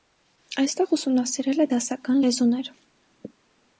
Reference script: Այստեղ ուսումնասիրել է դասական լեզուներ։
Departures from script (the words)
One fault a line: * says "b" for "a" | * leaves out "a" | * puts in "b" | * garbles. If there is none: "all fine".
all fine